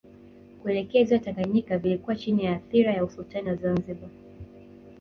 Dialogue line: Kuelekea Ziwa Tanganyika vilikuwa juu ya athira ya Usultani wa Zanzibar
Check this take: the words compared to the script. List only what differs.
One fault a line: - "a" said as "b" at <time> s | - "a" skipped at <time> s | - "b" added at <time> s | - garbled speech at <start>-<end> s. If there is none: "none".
- "juu" said as "chini" at 2.1 s